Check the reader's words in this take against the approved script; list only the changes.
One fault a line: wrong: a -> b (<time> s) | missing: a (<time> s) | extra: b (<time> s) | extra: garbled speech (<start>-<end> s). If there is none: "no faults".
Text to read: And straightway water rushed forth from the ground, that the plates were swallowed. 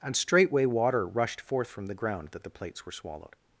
no faults